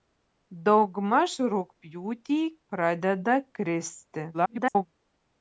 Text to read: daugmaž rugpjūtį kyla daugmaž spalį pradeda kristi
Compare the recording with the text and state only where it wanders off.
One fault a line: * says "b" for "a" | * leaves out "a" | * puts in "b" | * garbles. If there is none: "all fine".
* leaves out "kyla daugmaž spalį"
* garbles